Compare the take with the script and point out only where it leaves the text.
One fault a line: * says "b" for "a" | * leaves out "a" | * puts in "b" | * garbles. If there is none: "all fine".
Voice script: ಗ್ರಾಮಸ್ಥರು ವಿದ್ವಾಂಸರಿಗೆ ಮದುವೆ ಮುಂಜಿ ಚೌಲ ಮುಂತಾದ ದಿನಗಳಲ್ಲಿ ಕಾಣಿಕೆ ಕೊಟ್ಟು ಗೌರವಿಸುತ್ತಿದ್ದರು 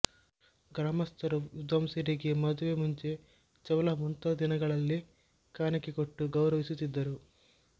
all fine